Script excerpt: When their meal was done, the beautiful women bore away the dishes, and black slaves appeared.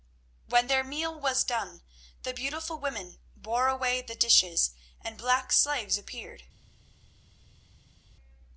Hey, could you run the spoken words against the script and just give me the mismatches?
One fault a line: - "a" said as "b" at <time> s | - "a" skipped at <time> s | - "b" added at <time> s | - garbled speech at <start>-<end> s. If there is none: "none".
none